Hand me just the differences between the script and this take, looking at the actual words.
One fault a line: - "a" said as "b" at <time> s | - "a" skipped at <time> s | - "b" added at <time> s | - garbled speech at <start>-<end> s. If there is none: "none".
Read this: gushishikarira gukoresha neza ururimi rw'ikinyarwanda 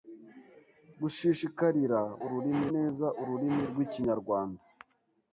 - "gukoresha" said as "ururimi" at 2.2 s